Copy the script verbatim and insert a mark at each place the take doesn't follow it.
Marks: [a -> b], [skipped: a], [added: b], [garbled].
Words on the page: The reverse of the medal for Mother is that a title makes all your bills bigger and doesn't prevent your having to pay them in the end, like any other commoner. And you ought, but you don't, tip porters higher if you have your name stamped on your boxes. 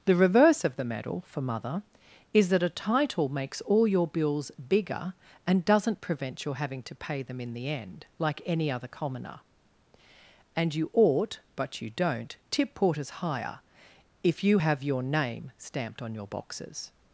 The reverse of the medal for Mother is that a title makes all your bills bigger and doesn't prevent your having to pay them in the end, like any other commoner. And you ought, but you don't, tip porters higher if you have your name stamped on your boxes.